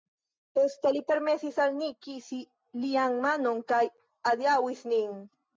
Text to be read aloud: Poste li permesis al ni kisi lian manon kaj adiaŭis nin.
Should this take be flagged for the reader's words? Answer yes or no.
no